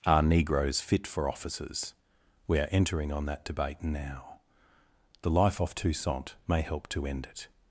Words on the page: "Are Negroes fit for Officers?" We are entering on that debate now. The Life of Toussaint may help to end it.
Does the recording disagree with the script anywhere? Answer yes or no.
yes